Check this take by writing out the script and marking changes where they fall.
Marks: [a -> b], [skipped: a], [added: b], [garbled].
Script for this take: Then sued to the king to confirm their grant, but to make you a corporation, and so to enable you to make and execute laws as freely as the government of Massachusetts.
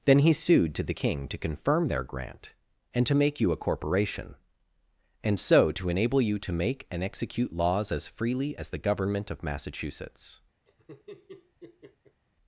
Then [added: he] sued to the king to confirm their grant, [but -> and] to make you a corporation, and so to enable you to make and execute laws as freely as the government of Massachusetts.